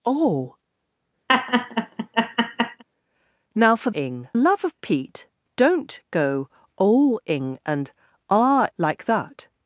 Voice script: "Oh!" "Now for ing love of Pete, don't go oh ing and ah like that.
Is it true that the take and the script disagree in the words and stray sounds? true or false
true